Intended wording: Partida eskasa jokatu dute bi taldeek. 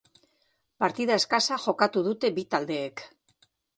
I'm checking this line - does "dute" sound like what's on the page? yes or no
yes